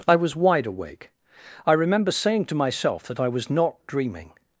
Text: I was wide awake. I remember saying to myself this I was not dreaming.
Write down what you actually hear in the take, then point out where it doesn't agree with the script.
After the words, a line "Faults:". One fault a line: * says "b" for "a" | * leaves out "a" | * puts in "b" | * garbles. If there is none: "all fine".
I was wide awake. I remember saying to myself that I was not dreaming.
Faults:
* says "that" for "this"